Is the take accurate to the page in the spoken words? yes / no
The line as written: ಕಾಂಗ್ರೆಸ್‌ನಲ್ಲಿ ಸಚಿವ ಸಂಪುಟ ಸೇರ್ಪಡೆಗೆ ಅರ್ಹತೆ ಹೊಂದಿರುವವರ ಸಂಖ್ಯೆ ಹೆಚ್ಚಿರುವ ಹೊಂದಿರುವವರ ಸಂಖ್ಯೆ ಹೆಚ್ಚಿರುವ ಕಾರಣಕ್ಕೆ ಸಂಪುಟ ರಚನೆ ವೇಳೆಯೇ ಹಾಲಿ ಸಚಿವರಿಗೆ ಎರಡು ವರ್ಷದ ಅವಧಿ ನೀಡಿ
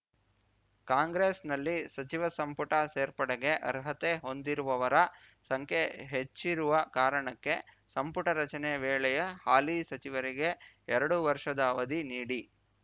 no